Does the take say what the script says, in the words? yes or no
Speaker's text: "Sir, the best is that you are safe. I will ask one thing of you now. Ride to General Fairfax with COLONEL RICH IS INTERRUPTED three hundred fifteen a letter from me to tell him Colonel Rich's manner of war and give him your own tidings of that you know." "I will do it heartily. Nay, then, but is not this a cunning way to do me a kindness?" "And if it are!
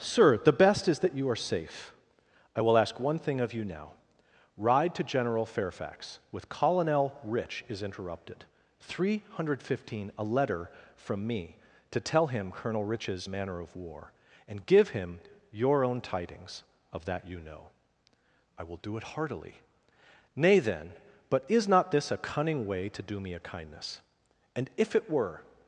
no